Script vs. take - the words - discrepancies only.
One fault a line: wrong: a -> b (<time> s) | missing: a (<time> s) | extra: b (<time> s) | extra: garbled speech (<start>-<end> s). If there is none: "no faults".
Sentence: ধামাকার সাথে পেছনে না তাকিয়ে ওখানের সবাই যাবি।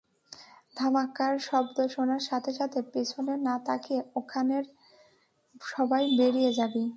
extra: শব্দ শোনার (1.5 s)
extra: সাথে (2.5 s)
extra: বেরিয়ে (6.2 s)